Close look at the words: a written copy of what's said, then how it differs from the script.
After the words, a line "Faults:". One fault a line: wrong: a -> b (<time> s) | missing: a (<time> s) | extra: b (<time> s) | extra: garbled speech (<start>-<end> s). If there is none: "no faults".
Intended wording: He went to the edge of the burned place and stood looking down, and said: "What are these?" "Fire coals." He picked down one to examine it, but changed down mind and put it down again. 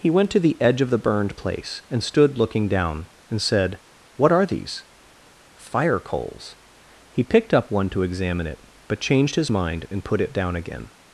He went to the edge of the burned place and stood looking down, and said: "What are these?" "Fire coals." He picked up one to examine it, but changed his mind and put it down again.
Faults:
wrong: down -> up (7.5 s)
wrong: down -> his (9.3 s)